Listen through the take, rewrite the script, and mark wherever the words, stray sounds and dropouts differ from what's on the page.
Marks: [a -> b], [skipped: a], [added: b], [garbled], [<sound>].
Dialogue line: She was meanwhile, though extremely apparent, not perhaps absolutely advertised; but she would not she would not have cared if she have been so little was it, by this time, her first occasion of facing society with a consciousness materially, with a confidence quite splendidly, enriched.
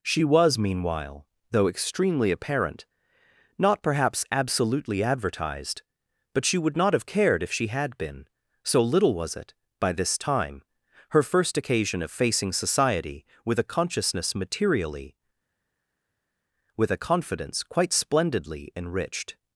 She was meanwhile, though extremely apparent, not perhaps absolutely advertised; but she would not [skipped: she would not] have cared if she [have -> had] been so little was it, by this time, her first occasion of facing society with a consciousness materially, with a confidence quite splendidly, enriched.